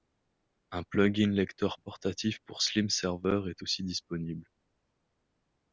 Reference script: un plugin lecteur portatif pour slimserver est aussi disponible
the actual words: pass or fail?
pass